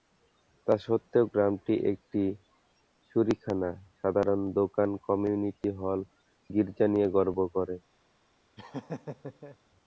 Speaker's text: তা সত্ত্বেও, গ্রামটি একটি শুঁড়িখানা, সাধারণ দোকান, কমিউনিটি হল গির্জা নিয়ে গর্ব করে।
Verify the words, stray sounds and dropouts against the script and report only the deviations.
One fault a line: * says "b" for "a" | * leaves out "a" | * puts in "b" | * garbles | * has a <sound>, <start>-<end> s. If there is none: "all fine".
* has a laugh, 8.6-9.6 s